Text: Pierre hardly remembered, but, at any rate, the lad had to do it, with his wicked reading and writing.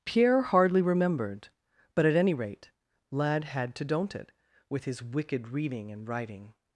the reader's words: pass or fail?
fail